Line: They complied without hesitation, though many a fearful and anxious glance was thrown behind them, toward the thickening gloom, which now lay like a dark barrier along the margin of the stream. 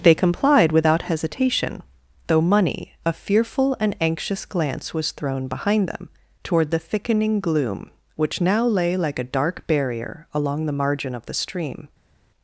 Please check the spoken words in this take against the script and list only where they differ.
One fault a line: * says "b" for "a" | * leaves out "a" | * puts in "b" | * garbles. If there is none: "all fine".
* says "money" for "many"